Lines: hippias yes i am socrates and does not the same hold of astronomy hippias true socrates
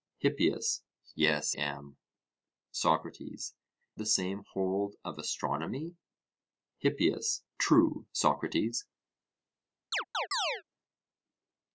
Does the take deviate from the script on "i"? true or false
true